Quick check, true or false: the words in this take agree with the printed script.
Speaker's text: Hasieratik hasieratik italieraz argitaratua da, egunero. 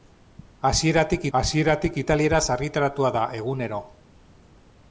true